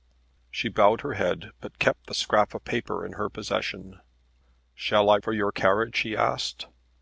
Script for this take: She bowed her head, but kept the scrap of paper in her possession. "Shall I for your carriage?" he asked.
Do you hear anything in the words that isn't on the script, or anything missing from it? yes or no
no